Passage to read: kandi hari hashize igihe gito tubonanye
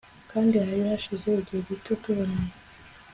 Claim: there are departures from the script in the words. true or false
false